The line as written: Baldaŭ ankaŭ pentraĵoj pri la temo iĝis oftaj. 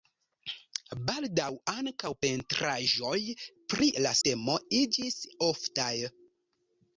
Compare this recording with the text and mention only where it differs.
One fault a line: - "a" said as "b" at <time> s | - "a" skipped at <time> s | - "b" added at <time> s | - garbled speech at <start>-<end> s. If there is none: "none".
none